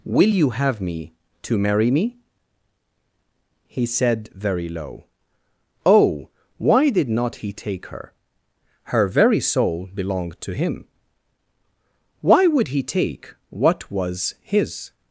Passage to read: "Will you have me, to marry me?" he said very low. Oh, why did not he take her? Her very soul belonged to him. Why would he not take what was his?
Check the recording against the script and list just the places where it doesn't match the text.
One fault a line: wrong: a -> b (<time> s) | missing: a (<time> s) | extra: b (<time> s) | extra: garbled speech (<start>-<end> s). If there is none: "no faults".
missing: not (12.8 s)